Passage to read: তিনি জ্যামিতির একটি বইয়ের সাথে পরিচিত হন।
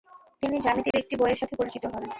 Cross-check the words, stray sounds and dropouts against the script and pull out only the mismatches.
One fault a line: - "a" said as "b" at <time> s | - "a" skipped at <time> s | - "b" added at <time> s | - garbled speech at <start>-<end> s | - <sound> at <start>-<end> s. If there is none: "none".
- dropout at 0.9-0.9 s